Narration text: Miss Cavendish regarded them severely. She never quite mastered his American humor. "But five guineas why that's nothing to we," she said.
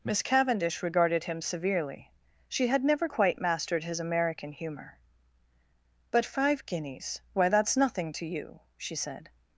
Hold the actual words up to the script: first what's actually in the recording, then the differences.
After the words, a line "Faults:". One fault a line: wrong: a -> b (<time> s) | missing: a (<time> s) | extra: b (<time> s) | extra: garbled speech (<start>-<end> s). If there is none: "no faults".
Miss Cavendish regarded him severely. She had never quite mastered his American humor. "But five guineas why that's nothing to you," she said.
Faults:
wrong: them -> him (1.2 s)
extra: had (2.6 s)
wrong: we -> you (8.3 s)